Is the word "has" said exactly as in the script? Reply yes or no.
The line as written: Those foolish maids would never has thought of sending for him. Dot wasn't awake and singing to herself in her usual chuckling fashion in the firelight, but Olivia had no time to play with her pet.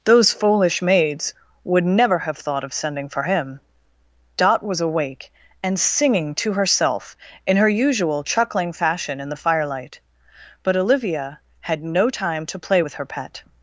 no